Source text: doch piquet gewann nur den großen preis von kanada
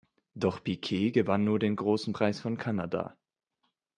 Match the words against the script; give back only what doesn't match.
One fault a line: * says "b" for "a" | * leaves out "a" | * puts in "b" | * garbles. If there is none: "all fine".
all fine